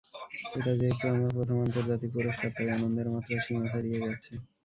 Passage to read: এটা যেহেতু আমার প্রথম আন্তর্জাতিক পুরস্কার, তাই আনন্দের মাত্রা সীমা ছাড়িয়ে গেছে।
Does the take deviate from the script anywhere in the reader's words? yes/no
no